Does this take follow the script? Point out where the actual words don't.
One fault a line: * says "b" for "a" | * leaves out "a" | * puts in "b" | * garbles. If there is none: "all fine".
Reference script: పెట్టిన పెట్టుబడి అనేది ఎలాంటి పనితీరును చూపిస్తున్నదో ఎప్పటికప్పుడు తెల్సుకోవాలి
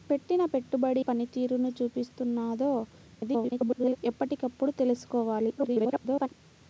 * leaves out "అనేది ఎలాంటి"
* garbles
* garbles